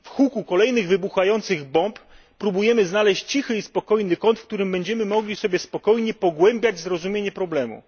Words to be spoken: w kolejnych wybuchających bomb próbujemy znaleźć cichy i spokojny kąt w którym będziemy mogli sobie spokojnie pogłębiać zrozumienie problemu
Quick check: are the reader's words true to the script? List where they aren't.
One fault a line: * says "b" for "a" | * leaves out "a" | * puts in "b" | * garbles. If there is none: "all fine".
* puts in "huku"